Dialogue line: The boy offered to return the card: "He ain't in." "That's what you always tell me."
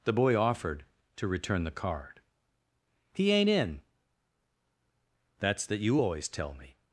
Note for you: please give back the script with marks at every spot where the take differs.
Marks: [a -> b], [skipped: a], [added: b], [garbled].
The boy offered to return the card: "He ain't in." "That's [what -> that] you always tell me."